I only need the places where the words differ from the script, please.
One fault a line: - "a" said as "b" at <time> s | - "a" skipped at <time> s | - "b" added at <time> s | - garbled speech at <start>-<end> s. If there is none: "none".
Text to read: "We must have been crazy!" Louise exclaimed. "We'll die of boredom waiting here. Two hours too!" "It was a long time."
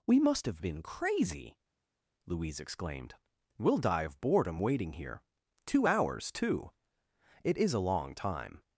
- "was" said as "is" at 7.6 s